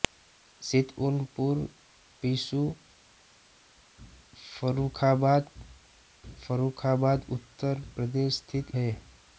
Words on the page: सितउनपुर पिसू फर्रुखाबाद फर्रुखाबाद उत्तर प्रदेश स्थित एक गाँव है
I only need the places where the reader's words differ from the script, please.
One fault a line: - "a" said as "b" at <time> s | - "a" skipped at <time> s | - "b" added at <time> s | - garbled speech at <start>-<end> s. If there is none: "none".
- "एक गाँव" skipped at 8.8 s